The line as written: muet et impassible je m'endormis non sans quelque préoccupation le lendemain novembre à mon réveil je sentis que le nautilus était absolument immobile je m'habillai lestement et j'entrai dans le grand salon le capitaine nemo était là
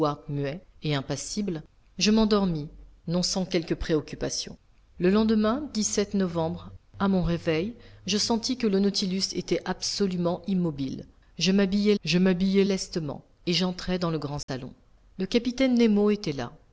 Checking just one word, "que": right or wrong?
right